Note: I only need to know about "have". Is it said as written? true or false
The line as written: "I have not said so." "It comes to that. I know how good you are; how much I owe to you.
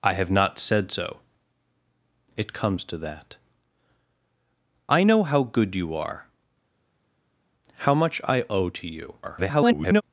true